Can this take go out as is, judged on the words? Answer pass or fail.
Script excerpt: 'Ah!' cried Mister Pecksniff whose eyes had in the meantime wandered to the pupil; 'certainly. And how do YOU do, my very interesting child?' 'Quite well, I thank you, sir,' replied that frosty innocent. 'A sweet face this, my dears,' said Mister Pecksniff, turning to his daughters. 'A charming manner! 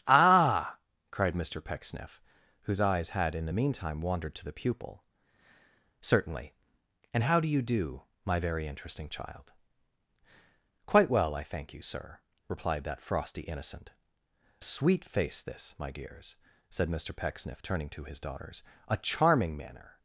fail